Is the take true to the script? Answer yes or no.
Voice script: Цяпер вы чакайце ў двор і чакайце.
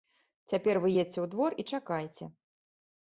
no